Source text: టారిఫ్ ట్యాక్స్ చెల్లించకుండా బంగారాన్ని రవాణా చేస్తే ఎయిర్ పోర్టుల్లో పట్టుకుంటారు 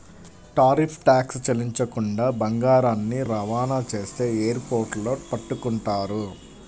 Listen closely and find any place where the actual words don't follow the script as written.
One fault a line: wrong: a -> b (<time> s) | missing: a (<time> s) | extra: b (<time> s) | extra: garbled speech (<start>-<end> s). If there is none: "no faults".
no faults